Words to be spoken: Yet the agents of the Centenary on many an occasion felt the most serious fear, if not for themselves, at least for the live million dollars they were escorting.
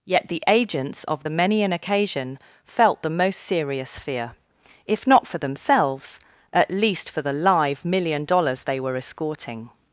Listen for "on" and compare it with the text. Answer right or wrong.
wrong